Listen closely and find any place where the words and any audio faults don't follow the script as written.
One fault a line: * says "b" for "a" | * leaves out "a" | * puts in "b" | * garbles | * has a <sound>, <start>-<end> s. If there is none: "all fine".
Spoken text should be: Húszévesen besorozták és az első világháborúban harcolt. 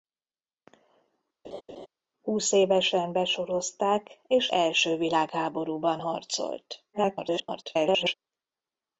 * has a laugh, 1.4-1.9 s
* leaves out "az"
* garbles